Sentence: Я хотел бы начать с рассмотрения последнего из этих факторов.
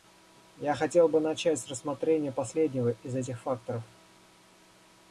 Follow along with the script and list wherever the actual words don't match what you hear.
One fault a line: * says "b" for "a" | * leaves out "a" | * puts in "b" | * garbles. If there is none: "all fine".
all fine